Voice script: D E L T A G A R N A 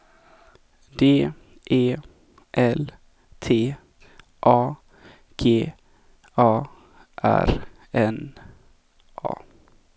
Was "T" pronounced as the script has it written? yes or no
yes